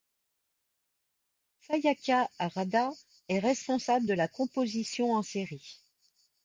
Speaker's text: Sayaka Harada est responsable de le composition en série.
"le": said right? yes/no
no